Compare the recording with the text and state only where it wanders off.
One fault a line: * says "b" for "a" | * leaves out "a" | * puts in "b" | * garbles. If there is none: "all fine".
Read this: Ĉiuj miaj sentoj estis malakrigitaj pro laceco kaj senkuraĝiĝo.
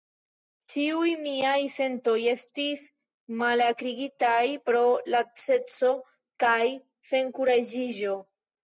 all fine